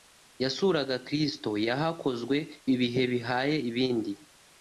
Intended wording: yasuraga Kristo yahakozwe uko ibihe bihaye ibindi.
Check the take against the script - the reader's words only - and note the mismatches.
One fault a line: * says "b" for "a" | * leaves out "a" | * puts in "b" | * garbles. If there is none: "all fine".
* leaves out "uko"